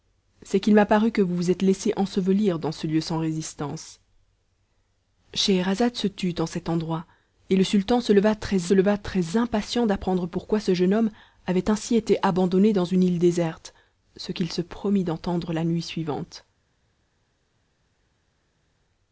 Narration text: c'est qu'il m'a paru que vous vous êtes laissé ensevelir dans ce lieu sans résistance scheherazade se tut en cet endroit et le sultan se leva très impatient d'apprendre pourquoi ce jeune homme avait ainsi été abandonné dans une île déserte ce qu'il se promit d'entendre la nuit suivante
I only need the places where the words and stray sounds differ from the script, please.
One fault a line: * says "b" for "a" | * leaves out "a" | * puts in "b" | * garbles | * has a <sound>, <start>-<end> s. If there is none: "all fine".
* puts in "leva très"